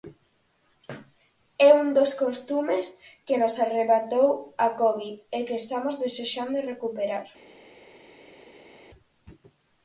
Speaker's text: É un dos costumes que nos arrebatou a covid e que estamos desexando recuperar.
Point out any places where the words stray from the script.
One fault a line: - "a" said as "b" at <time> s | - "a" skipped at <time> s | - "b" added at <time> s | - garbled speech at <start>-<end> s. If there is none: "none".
none